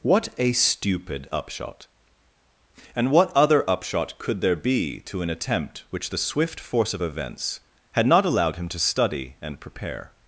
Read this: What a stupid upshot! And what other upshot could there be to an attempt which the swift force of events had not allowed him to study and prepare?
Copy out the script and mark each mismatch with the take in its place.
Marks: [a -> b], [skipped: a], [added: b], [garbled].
What a stupid upshot! And what other upshot could there be to an attempt which the swift force of events had not allowed him to study and prepare?